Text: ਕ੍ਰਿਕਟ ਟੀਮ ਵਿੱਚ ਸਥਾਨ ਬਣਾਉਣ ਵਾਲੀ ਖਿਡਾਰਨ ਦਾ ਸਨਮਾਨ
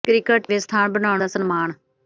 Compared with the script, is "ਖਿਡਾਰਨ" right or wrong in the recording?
wrong